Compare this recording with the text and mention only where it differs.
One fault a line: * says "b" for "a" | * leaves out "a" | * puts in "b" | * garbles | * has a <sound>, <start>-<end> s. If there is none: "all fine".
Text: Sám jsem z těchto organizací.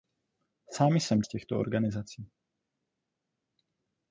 all fine